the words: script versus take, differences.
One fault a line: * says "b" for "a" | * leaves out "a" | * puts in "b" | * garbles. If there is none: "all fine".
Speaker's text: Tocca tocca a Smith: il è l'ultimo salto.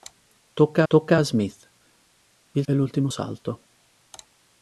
all fine